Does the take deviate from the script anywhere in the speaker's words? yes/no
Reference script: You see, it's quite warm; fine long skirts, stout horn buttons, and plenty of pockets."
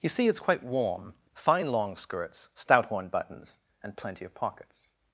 no